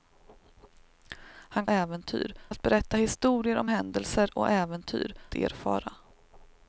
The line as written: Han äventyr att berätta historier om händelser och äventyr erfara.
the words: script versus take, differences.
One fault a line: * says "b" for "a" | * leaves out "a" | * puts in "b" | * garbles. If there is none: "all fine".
all fine